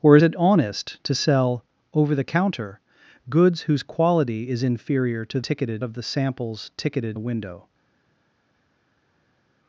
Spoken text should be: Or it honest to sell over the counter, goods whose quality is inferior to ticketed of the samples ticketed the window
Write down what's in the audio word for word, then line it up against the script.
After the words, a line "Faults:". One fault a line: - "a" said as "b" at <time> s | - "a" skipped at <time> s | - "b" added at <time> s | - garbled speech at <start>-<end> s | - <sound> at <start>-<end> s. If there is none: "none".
Or it honest to sell over the counter, goods whose quality is inferior to ticketed of the samples ticketed the window
Faults:
none